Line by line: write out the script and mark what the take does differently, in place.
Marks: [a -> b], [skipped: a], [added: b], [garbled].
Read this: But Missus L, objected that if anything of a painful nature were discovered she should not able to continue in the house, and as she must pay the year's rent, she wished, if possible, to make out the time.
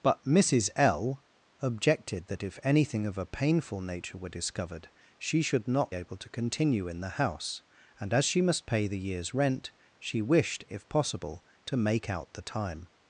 But Missus L, objected that if anything of a painful nature were discovered she should not able to continue in the house, and as she must pay the year's rent, she wished, if possible, to make out the time.